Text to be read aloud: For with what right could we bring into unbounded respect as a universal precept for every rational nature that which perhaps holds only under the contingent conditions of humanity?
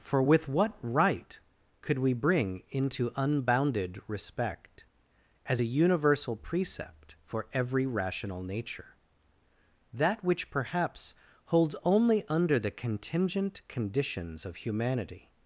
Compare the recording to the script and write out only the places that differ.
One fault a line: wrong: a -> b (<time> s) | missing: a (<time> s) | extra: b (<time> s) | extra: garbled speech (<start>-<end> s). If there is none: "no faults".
no faults